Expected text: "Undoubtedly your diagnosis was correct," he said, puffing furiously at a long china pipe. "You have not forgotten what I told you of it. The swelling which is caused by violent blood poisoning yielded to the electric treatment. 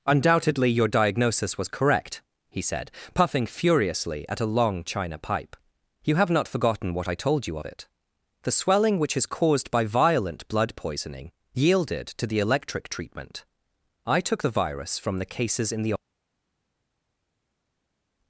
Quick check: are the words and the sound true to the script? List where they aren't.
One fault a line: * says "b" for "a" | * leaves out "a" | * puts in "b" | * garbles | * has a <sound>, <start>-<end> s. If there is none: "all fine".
* puts in "I took the virus from the cases in the"